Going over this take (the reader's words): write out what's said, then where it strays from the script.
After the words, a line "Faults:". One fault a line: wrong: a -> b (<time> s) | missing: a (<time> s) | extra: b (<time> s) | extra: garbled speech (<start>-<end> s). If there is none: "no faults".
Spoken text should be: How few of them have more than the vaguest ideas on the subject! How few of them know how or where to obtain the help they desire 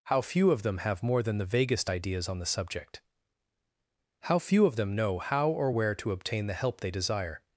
How few of them have more than the vaguest ideas on the subject! How few of them know how or where to obtain the help they desire
Faults:
no faults